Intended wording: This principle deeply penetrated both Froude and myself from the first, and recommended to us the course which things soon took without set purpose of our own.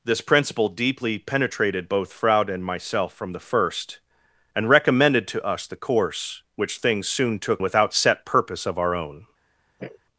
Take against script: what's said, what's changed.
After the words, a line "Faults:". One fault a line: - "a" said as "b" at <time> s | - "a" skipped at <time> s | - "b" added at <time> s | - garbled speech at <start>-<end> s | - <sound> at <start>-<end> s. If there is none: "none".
This principle deeply penetrated both Froude and myself from the first, and recommended to us the course which things soon took without set purpose of our own.
Faults:
- sniff at 9.8-10.0 s